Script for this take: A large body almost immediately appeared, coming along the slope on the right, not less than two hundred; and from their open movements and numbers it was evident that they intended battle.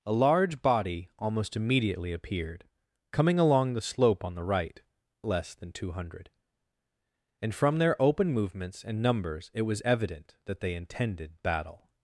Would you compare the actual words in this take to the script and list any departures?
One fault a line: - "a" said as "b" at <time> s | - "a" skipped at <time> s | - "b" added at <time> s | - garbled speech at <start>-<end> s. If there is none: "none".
- "not" skipped at 4.8 s